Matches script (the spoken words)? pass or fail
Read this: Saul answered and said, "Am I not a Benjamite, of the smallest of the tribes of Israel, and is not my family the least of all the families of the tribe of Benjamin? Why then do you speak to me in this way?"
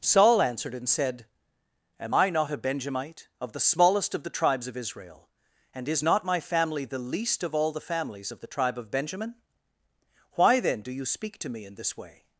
pass